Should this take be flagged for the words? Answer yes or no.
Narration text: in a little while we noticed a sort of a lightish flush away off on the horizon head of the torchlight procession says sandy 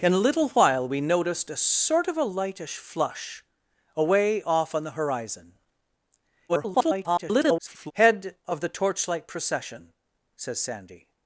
yes